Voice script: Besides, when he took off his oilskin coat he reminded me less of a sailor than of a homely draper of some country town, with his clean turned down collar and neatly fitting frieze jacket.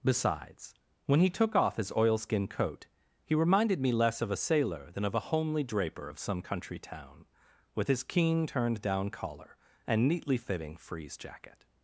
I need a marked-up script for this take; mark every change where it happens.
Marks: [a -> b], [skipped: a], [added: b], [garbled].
Besides, when he took off his oilskin coat he reminded me less of a sailor than of a homely draper of some country town, with his [clean -> keen] turned down collar and neatly fitting frieze jacket.